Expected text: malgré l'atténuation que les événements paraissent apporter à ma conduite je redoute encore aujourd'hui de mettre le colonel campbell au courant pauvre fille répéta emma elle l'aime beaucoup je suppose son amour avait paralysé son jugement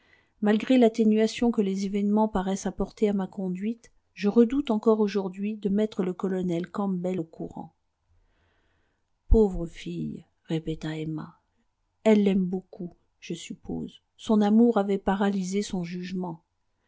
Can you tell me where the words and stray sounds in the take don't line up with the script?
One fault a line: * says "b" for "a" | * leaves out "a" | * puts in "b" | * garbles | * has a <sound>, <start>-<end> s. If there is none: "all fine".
all fine